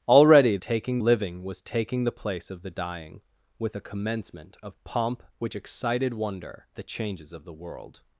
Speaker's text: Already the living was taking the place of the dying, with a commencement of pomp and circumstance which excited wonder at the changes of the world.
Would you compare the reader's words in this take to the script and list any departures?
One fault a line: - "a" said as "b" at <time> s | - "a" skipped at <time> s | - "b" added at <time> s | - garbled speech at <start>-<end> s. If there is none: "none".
- "the" said as "taking" at 0.6 s
- "and circumstance" skipped at 5.2 s
- "at" skipped at 6.7 s